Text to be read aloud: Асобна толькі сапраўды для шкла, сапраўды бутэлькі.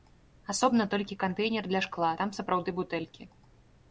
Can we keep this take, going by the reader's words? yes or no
no